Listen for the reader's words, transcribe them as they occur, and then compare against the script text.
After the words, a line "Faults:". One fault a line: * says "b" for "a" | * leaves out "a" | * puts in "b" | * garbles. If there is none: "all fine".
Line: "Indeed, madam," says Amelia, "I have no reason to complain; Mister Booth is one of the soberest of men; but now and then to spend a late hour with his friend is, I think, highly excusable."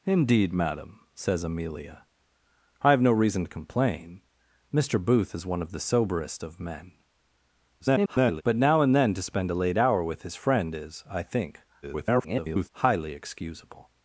"Indeed, madam," says Amelia, "I have no reason to complain; Mister Booth is one of the soberest of men; [garbled] but now and then to spend a late hour with his friend is, I think, [garbled] highly excusable."
Faults:
* garbles
* garbles